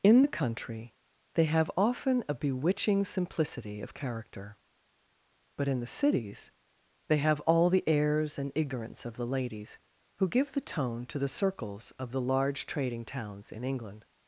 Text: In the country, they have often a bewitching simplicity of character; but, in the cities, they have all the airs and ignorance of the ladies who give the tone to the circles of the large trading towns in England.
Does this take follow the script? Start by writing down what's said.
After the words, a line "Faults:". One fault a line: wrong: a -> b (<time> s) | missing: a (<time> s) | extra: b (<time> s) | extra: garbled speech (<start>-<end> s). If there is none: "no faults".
In the country, they have often a bewitching simplicity of character; but, in the cities, they have all the airs and ignorance of the ladies who give the tone to the circles of the large trading towns in England.
Faults:
no faults